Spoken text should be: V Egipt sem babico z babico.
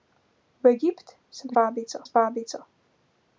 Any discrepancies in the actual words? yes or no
no